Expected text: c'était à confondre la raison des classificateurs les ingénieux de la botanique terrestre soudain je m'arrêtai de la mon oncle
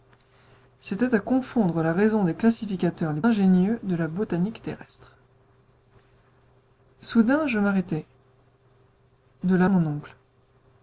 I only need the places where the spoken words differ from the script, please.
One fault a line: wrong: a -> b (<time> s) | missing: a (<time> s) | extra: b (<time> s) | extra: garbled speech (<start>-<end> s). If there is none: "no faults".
no faults